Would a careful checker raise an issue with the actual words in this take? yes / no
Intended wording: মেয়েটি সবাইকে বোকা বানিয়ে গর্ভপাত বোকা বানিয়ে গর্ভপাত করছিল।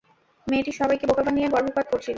yes